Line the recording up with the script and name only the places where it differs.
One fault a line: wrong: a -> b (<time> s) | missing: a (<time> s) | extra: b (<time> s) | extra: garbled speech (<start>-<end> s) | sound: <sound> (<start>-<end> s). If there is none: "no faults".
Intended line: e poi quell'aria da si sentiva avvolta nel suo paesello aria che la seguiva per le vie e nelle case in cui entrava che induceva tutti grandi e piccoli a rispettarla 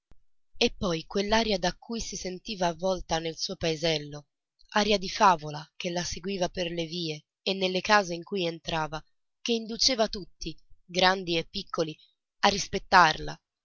extra: cui (1.8 s)
extra: di favola (5.0 s)